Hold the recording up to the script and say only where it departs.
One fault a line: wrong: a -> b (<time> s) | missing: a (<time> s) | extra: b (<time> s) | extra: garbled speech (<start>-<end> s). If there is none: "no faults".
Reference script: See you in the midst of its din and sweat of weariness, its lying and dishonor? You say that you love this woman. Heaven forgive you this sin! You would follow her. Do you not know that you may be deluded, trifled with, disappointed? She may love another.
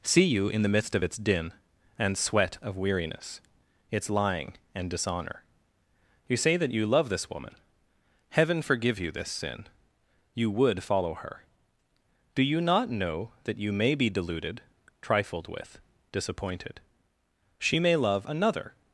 no faults